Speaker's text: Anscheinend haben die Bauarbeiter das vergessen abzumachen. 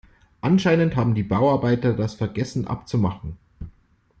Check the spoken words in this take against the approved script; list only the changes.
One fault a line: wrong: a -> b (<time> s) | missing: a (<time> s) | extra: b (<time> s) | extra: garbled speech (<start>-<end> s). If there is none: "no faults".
no faults